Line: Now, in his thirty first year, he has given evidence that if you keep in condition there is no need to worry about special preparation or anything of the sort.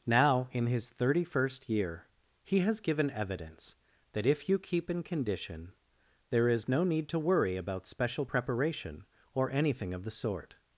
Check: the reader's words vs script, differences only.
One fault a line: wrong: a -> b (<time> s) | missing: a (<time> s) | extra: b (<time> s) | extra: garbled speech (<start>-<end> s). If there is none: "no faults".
no faults